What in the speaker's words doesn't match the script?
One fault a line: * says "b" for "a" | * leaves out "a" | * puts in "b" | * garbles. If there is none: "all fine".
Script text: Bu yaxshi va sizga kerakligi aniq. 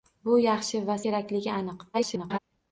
* leaves out "sizga"
* garbles